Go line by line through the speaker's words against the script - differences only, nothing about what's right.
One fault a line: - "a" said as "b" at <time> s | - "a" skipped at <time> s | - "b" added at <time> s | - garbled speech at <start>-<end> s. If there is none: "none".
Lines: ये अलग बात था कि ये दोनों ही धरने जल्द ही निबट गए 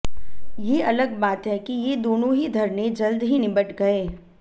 - "था" said as "है" at 1.5 s